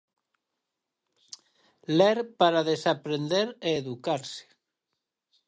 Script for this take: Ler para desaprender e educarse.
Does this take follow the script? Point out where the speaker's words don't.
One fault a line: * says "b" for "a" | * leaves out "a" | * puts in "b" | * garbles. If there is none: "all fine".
all fine